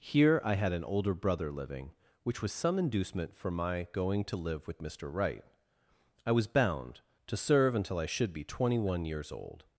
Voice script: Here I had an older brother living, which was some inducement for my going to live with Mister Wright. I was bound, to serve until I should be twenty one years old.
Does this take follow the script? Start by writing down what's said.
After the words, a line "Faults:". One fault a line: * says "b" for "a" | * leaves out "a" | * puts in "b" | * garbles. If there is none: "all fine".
Here I had an older brother living, which was some inducement for my going to live with Mister Wright. I was bound, to serve until I should be twenty one years old.
Faults:
all fine